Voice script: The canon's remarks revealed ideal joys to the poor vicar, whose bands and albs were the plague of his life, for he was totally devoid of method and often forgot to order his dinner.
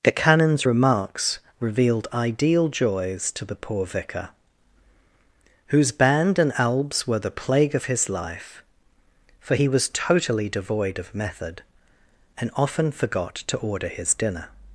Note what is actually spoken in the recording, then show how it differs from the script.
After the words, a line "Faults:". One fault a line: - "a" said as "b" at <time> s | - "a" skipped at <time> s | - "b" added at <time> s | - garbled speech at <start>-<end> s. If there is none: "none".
The canon's remarks revealed ideal joys to the poor vicar, whose band and albs were the plague of his life, for he was totally devoid of method and often forgot to order his dinner.
Faults:
- "bands" said as "band" at 5.9 s